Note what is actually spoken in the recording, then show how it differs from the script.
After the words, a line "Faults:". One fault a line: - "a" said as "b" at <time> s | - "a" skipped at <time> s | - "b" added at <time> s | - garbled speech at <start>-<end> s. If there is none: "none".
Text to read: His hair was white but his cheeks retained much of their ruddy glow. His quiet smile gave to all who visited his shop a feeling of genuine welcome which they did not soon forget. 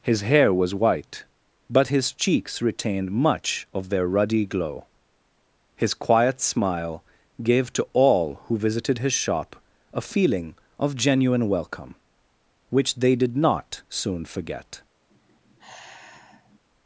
His hair was white but his cheeks retained much of their ruddy glow. His quiet smile gave to all who visited his shop a feeling of genuine welcome which they did not soon forget.
Faults:
none